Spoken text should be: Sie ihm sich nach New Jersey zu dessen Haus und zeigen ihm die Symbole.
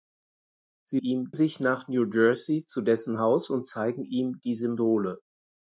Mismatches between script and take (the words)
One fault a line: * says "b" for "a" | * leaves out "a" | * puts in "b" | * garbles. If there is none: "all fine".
all fine